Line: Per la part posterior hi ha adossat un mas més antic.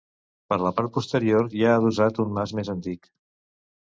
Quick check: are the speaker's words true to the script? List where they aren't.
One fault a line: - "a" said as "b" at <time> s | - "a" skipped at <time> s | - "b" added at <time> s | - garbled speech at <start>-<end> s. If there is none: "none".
none